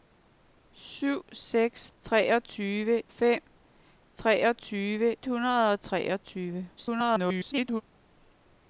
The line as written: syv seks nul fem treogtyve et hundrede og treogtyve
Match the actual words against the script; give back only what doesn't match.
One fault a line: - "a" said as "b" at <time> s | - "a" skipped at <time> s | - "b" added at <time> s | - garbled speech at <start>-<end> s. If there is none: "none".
- "nul" said as "treogtyve" at 2.0 s
- "et" skipped at 5.2 s
- garbled speech at 6.8-7.8 s